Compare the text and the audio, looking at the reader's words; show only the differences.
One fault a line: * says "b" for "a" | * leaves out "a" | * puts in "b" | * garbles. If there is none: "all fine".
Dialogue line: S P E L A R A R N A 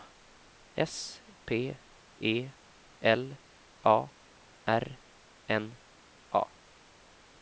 * leaves out "A R"